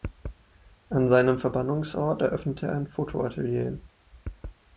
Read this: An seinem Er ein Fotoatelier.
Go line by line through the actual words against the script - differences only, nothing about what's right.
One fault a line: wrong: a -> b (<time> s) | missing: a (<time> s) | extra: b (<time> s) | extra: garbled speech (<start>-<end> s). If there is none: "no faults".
extra: Verbannungsort eröffnete (1.4 s)